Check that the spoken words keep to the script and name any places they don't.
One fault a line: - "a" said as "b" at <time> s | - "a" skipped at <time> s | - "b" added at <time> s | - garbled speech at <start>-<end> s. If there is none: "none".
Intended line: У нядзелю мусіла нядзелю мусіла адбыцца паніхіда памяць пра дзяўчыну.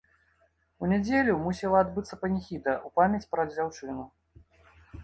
- "нядзелю мусіла" skipped at 1.8 s
- "ў" added at 2.8 s